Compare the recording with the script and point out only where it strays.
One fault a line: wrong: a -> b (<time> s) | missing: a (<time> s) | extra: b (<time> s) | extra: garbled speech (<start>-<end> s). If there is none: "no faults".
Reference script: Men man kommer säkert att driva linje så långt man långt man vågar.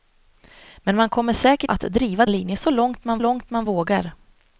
no faults